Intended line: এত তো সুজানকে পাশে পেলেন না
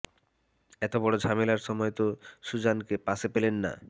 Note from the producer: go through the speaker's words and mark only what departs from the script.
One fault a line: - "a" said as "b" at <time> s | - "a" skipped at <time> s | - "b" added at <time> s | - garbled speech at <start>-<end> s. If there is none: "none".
- "বড় ঝামেলার সময়" added at 1.0 s